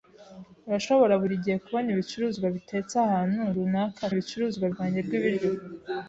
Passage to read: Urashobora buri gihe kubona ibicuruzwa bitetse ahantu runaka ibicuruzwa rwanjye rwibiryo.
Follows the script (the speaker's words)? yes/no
yes